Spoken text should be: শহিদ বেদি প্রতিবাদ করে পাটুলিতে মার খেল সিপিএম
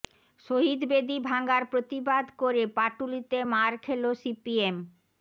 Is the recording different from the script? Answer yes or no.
yes